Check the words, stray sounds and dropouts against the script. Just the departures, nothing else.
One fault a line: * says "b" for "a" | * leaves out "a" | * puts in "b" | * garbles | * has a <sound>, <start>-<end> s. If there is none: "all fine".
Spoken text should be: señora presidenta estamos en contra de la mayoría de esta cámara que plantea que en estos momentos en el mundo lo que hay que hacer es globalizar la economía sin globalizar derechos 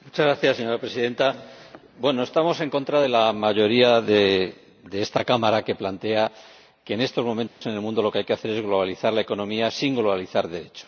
* has a dropout, 7.5-7.6 s